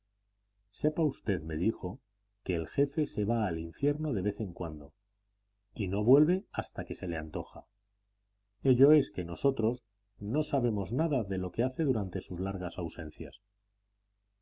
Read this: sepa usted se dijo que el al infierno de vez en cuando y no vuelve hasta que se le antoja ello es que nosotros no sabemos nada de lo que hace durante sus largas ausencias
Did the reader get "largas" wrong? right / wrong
right